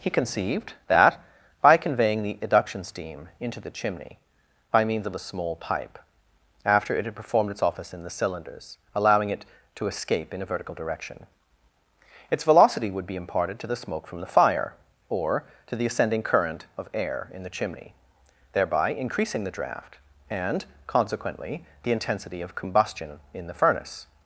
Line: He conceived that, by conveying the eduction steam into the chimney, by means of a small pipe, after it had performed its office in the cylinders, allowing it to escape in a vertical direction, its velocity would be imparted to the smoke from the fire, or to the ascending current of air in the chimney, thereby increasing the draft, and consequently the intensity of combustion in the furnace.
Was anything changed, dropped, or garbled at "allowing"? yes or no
no